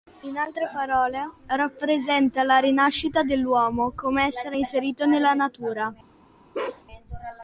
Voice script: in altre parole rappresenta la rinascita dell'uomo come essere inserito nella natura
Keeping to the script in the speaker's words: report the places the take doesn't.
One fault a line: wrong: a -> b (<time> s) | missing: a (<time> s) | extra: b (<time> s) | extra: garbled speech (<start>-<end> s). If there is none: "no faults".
no faults